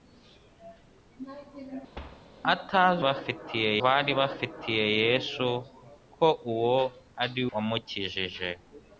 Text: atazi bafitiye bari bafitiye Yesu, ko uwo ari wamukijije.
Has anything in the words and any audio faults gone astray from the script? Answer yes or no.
yes